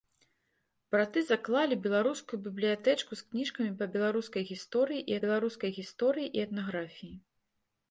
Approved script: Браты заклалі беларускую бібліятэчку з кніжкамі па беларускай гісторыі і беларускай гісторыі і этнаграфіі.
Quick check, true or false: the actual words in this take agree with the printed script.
true